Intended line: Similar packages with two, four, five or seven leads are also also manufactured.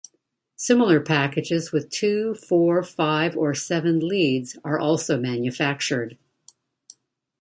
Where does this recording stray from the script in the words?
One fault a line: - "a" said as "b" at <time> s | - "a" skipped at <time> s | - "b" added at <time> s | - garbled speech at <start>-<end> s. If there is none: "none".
- "also" skipped at 5.2 s